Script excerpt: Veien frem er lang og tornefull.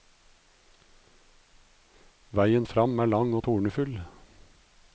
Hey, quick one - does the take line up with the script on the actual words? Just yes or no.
yes